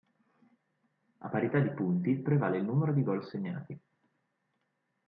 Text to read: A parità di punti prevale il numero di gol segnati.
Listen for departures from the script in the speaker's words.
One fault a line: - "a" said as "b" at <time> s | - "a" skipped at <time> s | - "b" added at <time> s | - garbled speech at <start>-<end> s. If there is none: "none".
none